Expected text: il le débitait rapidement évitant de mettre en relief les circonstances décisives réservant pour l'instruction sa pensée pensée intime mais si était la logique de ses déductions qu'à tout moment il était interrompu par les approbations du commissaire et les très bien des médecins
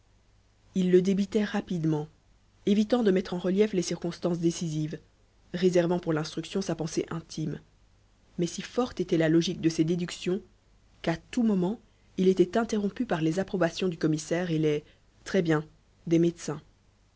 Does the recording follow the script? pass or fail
fail